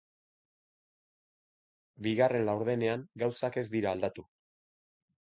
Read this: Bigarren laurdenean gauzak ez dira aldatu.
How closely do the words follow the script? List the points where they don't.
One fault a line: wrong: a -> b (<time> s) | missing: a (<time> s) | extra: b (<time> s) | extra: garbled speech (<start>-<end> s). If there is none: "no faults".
no faults